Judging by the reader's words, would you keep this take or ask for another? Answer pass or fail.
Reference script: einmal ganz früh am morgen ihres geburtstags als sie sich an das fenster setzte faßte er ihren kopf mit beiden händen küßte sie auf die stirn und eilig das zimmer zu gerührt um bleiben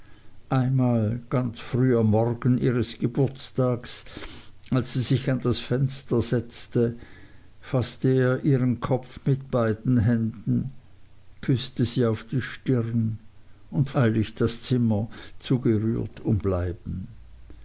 pass